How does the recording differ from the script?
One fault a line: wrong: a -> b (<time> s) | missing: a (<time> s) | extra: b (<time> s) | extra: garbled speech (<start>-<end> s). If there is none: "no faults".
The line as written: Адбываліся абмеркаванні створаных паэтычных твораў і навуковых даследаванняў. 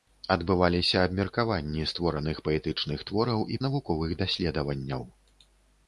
no faults